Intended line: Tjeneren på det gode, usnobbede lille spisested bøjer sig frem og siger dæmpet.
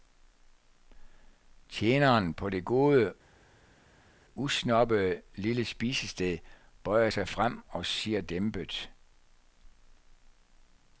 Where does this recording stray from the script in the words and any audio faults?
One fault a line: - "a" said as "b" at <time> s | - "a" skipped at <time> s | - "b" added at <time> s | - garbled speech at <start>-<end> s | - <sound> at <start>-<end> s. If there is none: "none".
none